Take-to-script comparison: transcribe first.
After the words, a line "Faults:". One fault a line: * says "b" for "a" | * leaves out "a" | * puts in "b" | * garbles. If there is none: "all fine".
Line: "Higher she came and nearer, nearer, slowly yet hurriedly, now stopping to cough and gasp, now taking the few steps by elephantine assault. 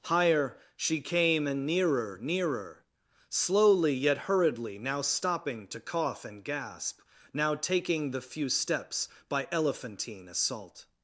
"Higher she came and nearer, nearer, slowly yet hurriedly, now stopping to cough and gasp, now taking the few steps by elephantine assault.
Faults:
all fine